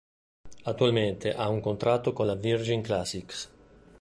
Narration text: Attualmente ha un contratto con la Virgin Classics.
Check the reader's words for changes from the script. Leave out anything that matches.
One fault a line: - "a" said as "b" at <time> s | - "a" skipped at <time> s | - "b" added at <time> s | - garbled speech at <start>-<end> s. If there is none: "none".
none